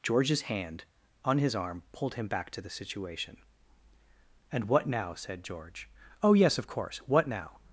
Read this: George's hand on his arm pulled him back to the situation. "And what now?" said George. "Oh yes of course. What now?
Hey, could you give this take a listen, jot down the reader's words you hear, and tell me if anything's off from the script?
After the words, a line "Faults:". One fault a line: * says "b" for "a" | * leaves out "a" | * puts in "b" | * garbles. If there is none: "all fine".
George's hand on his arm pulled him back to the situation. "And what now?" said George. "Oh yes of course. What now?
Faults:
all fine